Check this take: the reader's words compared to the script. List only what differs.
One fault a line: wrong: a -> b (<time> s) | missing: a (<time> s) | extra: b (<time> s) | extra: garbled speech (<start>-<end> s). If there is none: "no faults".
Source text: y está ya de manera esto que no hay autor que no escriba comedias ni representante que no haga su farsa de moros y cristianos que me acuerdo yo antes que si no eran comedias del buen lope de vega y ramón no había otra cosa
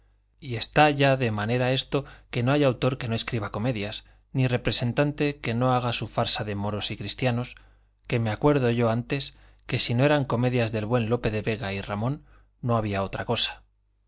no faults